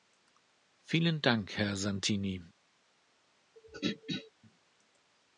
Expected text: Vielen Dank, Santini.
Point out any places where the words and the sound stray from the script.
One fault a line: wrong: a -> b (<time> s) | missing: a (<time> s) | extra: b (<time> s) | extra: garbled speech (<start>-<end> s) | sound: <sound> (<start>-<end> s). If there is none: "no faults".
extra: Herr (1.6 s)
sound: throat clearing (3.6-4.3 s)